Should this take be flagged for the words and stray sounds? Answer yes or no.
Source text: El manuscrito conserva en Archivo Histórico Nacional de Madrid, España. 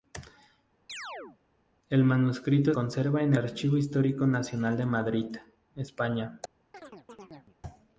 yes